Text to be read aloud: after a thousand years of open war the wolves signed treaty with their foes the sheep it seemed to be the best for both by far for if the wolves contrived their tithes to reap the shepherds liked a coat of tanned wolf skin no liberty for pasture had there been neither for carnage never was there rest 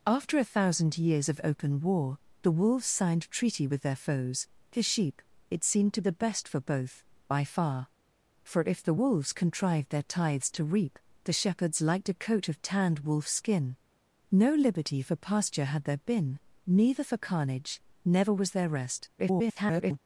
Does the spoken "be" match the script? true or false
false